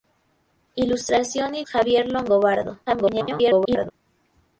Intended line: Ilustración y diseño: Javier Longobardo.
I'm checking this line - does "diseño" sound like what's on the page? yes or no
no